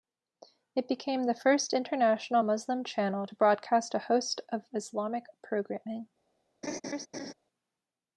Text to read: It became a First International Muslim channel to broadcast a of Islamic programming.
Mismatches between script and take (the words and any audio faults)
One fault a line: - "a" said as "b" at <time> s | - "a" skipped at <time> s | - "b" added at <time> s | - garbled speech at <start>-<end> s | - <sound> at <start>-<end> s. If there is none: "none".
- "a" said as "the" at 1.2 s
- "host" added at 4.0 s
- laugh at 6.6-7.3 s